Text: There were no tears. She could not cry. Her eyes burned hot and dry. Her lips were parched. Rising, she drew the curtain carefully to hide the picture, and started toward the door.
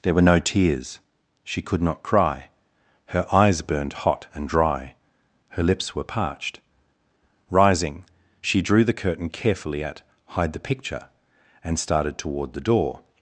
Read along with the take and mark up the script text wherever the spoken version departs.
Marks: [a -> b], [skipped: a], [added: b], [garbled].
There were no tears. She could not cry. Her eyes burned hot and dry. Her lips were parched. Rising, she drew the curtain carefully [to -> at] hide the picture, and started toward the door.